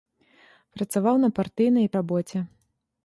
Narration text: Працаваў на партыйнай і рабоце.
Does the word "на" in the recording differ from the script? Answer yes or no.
no